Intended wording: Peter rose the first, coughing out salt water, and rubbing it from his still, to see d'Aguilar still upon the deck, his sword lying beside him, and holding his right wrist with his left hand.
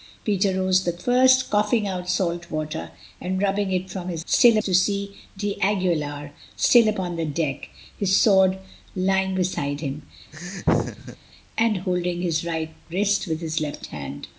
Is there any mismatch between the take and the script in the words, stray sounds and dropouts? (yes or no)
yes